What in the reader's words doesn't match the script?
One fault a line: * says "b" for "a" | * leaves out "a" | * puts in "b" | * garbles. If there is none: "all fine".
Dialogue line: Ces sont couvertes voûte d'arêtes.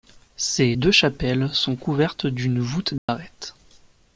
* puts in "deux chapelles"
* puts in "d'une"